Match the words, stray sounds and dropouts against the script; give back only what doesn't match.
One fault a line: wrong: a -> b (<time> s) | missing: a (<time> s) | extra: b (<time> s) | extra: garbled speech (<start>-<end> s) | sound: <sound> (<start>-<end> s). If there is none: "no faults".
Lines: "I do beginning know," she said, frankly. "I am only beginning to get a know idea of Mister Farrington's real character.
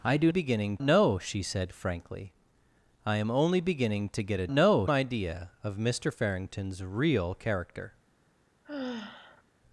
sound: sigh (8.6-9.4 s)